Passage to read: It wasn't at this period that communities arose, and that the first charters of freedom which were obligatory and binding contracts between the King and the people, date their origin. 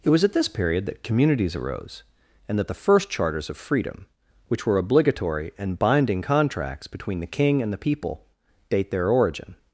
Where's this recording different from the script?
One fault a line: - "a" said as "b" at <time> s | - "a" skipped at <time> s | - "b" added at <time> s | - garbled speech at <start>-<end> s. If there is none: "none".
- "wasn't" said as "was" at 0.1 s